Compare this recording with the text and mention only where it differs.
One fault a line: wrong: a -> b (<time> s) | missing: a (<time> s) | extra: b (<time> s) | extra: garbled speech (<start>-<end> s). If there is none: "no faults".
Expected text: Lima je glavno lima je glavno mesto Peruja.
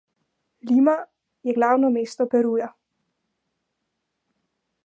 missing: lima je glavno (1.9 s)